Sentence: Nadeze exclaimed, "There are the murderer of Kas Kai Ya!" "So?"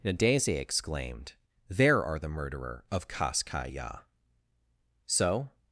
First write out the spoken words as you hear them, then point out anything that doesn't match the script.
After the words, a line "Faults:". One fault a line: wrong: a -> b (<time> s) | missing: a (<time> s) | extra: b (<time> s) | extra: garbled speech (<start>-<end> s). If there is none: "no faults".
Nadeze exclaimed, "There are the murderer of Kas Kai Ya!" "So?"
Faults:
no faults